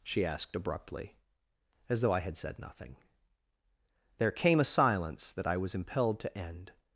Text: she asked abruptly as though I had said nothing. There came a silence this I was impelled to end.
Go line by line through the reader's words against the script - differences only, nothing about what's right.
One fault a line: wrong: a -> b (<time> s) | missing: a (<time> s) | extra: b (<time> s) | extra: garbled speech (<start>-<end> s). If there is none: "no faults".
wrong: this -> that (5.3 s)